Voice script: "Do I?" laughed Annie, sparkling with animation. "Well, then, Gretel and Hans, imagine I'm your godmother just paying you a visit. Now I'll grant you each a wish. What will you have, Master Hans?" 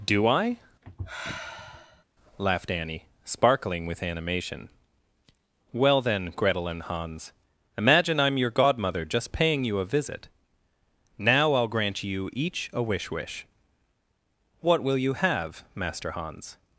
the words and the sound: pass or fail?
fail